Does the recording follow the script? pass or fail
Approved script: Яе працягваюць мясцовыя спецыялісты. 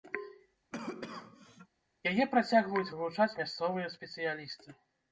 fail